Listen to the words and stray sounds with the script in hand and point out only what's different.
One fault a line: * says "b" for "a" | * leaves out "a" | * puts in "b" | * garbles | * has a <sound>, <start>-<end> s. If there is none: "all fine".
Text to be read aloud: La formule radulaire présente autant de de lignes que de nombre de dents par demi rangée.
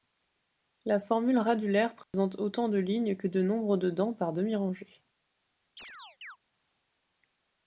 * has a dropout, 2.0-2.1 s
* leaves out "de"
* has a chirp, 5.8-6.4 s